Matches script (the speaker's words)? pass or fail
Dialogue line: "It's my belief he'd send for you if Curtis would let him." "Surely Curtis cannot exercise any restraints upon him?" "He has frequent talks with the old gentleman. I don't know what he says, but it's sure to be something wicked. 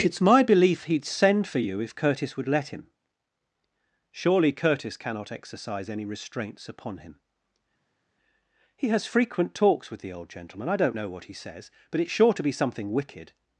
pass